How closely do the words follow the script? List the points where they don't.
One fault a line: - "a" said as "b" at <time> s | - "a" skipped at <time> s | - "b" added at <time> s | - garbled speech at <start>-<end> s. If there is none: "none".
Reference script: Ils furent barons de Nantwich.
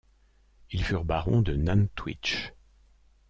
none